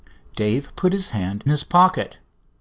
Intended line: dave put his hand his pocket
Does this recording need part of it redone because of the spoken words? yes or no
no